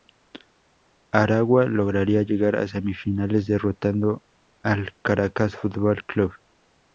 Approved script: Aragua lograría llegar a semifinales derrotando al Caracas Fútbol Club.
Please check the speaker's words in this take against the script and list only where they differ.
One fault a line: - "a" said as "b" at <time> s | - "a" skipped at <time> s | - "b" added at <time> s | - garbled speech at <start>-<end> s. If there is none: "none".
none